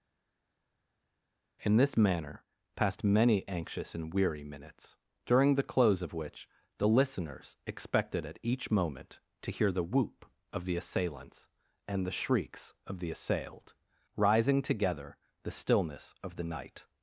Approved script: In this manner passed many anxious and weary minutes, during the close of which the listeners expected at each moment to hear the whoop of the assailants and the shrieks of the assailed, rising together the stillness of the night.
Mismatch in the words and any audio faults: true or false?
false